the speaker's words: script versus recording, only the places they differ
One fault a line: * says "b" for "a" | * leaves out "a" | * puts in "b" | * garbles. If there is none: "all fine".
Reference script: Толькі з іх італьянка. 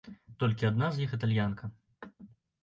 * puts in "адна"